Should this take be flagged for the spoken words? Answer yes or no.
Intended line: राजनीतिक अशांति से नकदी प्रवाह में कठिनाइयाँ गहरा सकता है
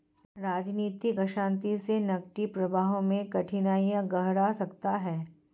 no